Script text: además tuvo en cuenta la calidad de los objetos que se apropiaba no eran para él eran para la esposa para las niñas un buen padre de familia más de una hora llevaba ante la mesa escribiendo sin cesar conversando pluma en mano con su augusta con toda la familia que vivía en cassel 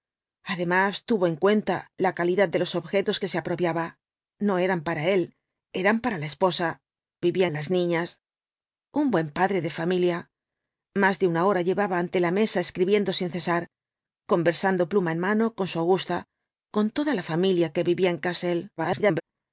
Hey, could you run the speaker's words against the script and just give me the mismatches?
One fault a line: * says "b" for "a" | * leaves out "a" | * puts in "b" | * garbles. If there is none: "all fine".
* says "vivía" for "para"
* garbles